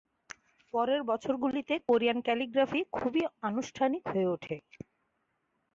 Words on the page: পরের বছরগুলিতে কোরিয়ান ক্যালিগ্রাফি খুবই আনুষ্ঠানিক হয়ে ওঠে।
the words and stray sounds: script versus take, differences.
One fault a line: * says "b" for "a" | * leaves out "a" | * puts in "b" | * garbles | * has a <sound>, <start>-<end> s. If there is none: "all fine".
all fine